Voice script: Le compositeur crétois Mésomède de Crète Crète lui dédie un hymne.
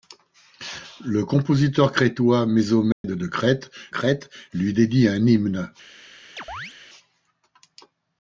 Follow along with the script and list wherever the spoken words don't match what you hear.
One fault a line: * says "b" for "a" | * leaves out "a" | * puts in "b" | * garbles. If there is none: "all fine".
all fine